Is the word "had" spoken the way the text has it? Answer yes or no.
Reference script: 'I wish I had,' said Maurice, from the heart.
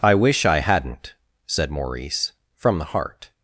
no